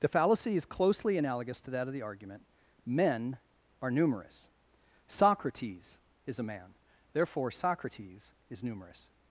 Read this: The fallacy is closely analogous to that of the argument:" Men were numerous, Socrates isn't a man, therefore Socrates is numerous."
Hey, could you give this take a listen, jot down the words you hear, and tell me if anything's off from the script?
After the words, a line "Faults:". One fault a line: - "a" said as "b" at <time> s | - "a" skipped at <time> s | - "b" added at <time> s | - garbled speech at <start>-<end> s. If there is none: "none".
The fallacy is closely analogous to that of the argument:" Men are numerous, Socrates is a man, therefore Socrates is numerous."
Faults:
- "were" said as "are" at 3.8 s
- "isn't" said as "is" at 6.2 s